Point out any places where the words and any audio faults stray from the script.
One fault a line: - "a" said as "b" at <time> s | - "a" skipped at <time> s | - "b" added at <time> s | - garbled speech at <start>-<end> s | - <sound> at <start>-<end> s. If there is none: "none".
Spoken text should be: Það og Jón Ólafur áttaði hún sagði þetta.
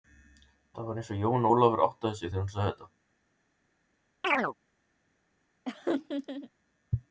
- "var eins" added at 0.9 s
- "sig þegar" added at 2.2 s
- chirp at 4.2-4.5 s
- laugh at 5.7-6.5 s